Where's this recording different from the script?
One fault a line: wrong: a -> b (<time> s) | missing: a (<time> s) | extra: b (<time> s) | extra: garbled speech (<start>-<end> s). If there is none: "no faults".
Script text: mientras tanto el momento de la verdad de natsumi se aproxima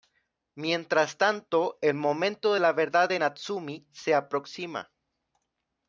no faults